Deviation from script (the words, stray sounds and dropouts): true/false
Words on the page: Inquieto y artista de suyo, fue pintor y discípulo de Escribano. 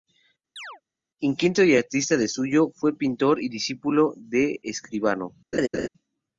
true